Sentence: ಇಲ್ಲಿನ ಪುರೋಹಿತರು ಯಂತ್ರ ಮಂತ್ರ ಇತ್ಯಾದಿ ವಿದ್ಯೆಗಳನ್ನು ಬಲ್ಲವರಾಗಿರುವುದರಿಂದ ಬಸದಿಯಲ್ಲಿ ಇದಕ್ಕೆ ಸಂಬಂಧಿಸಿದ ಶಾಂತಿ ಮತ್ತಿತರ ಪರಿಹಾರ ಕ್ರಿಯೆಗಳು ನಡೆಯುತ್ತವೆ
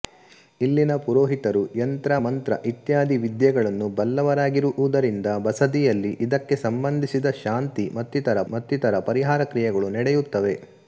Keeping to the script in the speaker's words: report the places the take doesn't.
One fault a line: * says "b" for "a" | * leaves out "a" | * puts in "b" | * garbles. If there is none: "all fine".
* puts in "ಮತ್ತಿತರ"